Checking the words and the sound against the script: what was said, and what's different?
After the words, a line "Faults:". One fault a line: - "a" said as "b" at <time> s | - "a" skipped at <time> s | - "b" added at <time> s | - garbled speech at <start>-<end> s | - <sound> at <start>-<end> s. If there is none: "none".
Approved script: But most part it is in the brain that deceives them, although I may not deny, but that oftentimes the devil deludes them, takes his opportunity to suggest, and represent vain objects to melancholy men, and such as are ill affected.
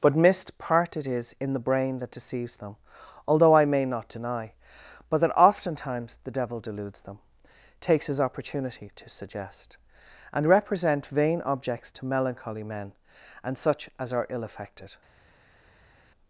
But mist part it is in the brain that deceives them, although I may not deny, but that oftentimes the devil deludes them, takes his opportunity to suggest, and represent vain objects to melancholy men, and such as are ill affected.
Faults:
- "most" said as "mist" at 0.1 s